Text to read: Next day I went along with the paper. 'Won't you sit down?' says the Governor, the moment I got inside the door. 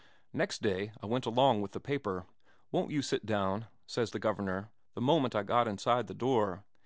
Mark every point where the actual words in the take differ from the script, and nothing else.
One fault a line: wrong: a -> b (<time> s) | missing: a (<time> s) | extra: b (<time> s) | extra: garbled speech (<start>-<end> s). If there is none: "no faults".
no faults